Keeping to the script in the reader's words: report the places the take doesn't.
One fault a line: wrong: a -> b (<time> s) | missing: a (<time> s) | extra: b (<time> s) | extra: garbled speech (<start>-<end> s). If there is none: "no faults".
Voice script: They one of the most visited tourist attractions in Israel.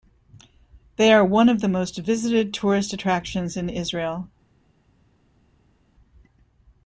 extra: are (1.1 s)